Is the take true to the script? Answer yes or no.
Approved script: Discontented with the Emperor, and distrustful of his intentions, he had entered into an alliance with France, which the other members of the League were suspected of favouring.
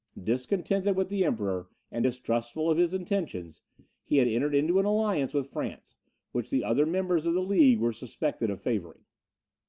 yes